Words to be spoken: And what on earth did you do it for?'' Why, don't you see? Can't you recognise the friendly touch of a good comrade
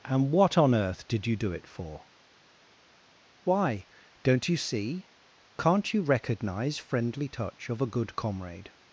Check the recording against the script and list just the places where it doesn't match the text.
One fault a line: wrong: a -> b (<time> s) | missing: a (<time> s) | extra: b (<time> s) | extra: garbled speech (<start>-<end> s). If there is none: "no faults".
missing: the (6.8 s)